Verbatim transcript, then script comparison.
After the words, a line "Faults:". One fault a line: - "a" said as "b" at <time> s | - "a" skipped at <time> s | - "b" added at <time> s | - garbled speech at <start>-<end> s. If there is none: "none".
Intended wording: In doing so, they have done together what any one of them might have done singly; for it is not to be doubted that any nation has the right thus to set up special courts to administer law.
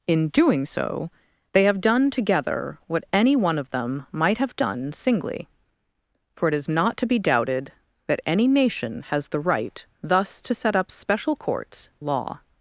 In doing so, they have done together what any one of them might have done singly; for it is not to be doubted that any nation has the right thus to set up special courts law.
Faults:
- "to administer" skipped at 11.9 s